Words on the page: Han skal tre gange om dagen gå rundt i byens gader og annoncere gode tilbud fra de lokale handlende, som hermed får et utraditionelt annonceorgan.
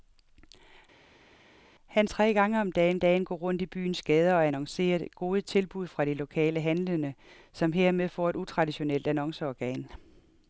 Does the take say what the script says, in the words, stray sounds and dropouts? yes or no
no